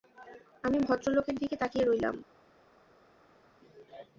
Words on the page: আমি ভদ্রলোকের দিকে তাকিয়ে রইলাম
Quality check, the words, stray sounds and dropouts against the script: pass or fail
pass